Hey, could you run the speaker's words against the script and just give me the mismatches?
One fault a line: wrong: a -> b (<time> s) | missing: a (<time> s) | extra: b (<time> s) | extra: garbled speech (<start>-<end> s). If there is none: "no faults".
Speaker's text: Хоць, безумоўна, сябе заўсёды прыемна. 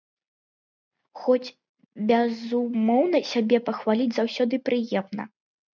extra: пахваліць (3.7 s)